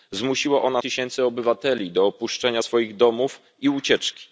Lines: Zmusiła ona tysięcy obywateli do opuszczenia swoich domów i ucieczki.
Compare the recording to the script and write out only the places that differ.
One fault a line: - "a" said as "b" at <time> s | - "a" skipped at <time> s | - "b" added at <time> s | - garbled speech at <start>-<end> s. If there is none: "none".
none